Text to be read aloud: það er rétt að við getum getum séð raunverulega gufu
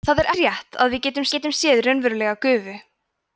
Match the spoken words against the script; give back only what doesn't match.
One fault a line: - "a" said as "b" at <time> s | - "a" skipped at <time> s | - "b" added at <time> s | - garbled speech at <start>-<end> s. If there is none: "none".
none